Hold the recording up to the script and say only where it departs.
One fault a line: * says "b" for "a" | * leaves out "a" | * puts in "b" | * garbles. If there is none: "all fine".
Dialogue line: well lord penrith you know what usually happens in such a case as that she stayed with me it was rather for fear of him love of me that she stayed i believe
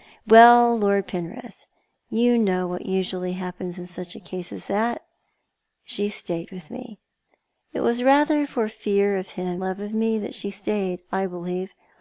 all fine